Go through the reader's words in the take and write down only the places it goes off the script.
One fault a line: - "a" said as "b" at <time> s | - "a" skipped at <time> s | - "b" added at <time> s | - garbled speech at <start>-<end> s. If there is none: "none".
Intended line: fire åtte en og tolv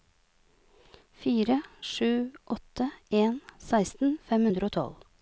- "sju" added at 1.8 s
- "seksten fem hundre" added at 3.7 s